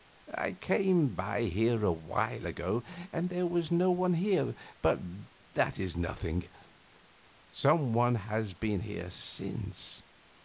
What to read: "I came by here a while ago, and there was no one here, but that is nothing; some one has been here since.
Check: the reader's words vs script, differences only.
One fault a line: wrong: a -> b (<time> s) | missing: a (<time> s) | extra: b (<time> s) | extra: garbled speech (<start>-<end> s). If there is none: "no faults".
no faults